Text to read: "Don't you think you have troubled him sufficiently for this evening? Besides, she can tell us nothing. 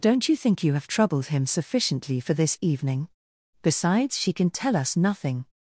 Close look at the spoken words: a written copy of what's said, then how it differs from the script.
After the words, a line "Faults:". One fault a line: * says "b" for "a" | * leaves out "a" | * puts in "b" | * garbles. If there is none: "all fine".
"Don't you think you have troubled him sufficiently for this evening? Besides, she can tell us nothing.
Faults:
all fine